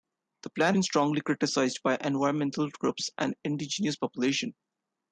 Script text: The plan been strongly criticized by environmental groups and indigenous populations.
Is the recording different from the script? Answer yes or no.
no